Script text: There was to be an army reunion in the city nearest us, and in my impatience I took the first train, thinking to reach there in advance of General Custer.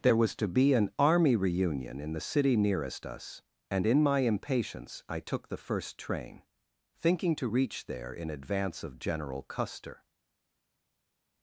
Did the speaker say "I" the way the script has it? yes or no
yes